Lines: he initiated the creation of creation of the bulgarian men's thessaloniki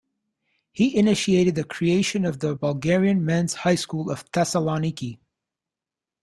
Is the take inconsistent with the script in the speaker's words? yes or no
yes